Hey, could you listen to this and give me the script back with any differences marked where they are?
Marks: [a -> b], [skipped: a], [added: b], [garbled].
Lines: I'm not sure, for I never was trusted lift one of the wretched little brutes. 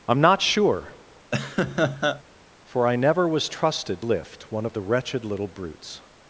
I'm not sure, for I never was trusted lift one of the wretched little brutes.